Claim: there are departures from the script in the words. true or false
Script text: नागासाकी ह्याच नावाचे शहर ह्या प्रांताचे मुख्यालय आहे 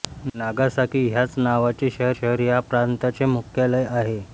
true